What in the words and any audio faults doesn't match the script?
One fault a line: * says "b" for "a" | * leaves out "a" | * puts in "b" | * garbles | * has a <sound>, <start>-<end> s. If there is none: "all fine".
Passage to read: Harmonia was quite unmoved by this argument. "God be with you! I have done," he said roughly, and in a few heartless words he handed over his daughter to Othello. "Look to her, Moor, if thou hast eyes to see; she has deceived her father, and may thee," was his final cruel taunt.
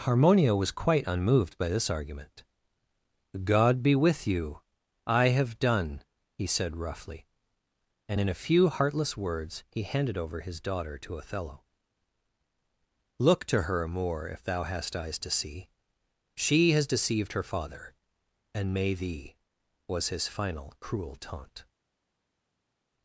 all fine